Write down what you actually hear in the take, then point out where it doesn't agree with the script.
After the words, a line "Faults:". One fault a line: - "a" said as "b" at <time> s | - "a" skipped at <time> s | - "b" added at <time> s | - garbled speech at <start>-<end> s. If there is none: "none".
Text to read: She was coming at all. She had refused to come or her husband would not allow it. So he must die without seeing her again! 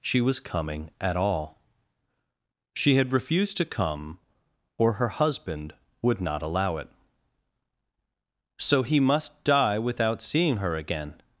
She was coming at all. She had refused to come or her husband would not allow it. So he must die without seeing her again!
Faults:
none